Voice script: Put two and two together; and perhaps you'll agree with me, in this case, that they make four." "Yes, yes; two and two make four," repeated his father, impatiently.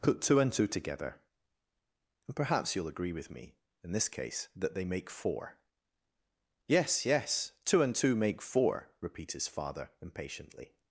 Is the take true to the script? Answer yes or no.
no